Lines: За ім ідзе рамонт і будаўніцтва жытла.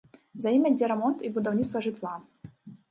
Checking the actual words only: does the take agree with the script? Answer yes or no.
yes